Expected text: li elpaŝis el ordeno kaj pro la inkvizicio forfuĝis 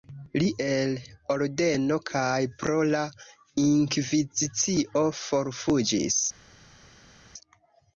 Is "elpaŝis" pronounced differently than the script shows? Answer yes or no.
yes